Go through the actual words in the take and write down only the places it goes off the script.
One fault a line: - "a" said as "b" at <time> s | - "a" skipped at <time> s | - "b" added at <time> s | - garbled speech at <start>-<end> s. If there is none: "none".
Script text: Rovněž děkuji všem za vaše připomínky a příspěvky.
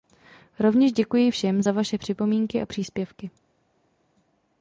none